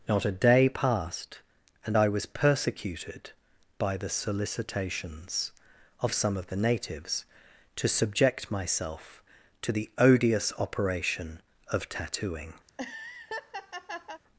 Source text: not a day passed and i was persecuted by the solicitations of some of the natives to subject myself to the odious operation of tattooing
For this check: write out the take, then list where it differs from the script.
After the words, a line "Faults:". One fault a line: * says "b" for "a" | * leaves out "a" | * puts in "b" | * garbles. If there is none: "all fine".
not a day passed and i was persecuted by the solicitations of some of the natives to subject myself to the odious operation of tattooing
Faults:
all fine